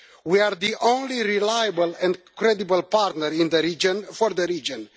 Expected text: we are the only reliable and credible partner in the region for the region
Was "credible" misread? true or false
false